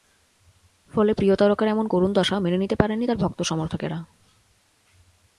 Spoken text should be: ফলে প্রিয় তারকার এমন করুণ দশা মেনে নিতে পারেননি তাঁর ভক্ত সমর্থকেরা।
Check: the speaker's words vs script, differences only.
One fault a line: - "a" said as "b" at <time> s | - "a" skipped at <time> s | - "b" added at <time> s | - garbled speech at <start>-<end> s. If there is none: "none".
none